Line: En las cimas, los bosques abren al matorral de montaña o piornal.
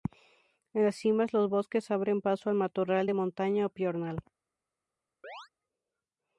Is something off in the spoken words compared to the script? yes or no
yes